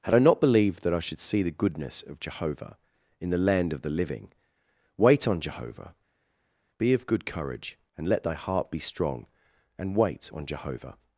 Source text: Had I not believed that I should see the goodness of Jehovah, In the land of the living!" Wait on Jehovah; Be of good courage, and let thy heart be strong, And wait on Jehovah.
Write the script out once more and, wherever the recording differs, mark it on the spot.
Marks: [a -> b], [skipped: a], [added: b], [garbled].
Had I not believed that I should see the goodness of Jehovah, In the land of the living!" Wait on Jehovah; Be of good courage, and let thy heart be strong, And wait on Jehovah.